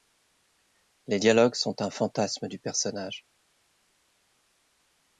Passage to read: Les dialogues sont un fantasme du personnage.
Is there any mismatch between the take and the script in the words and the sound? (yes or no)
no